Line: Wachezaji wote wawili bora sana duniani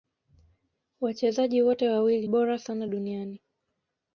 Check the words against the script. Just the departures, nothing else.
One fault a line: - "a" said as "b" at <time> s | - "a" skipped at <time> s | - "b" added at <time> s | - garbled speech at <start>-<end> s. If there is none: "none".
none